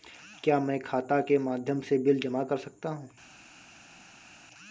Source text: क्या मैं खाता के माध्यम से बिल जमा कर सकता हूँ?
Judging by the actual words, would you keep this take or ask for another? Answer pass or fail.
pass